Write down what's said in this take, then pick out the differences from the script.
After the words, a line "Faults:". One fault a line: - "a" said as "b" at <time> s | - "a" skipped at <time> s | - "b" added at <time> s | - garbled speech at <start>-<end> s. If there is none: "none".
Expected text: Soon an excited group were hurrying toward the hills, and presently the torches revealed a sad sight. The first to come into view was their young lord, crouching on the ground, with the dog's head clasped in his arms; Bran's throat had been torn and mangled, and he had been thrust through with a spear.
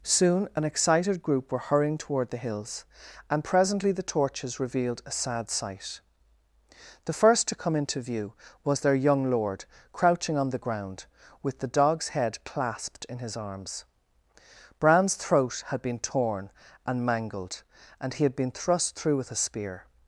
Soon an excited group were hurrying toward the hills, and presently the torches revealed a sad sight. The first to come into view was their young lord, crouching on the ground, with the dog's head clasped in his arms; Bran's throat had been torn and mangled, and he had been thrust through with a spear.
Faults:
none